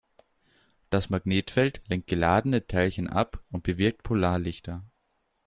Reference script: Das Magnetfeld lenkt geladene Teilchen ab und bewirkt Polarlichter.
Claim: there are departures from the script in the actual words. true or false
false